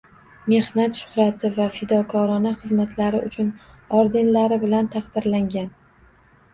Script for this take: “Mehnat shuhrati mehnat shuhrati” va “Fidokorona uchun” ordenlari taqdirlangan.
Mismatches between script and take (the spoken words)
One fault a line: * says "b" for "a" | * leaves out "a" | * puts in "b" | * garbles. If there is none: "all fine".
* leaves out "mehnat shuhrati"
* puts in "xizmatlari"
* puts in "bilan"